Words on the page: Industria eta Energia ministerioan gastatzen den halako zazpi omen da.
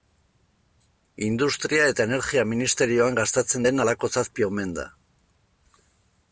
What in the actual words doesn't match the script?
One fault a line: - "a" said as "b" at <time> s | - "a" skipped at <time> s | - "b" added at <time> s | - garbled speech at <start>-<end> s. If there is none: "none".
none